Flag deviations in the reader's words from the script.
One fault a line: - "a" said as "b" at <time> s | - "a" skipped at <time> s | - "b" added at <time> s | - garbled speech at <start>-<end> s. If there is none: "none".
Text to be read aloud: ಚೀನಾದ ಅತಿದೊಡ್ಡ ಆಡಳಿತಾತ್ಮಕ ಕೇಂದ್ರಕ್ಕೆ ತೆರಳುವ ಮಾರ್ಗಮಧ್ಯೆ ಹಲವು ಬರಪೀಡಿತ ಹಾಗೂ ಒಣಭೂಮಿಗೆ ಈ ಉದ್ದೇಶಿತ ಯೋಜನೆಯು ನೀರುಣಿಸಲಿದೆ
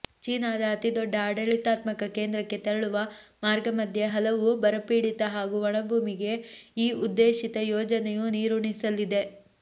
none